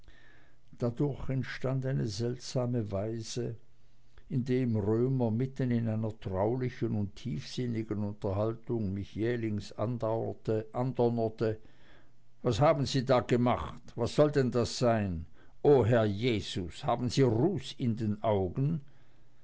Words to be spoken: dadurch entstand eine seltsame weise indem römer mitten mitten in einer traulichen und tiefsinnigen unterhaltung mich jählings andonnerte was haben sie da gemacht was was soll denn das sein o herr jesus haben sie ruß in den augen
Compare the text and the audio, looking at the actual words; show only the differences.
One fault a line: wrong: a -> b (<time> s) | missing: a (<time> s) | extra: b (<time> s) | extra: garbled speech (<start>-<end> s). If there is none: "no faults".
missing: mitten (5.7 s)
missing: was (14.1 s)